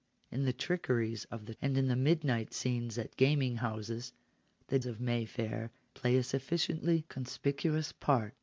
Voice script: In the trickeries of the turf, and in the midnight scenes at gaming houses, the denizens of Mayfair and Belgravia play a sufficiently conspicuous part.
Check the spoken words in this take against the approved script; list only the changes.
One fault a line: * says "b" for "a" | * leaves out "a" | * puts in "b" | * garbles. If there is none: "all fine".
* leaves out "turf"
* leaves out "denizens"
* leaves out "and Belgravia"